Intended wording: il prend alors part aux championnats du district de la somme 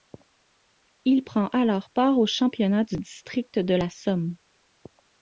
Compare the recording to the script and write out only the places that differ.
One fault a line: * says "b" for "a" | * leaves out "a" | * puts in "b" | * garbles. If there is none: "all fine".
all fine